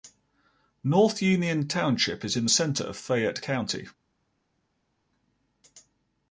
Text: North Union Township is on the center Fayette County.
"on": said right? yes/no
no